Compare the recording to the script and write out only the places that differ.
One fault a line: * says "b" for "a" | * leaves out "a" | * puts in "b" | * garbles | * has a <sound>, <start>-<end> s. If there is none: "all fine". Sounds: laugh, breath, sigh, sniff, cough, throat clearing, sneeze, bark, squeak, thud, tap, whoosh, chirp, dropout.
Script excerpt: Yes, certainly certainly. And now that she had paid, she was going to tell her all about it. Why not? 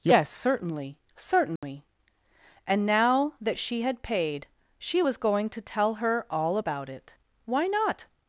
* has a dropout, 1.6-1.6 s